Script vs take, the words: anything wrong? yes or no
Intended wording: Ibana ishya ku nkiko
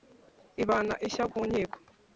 no